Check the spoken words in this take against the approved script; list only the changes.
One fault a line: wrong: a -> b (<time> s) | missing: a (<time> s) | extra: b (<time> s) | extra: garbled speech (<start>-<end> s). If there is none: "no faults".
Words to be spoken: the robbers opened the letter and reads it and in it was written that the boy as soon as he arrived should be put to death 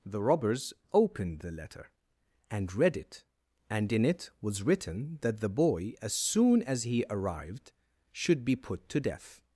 wrong: reads -> read (2.7 s)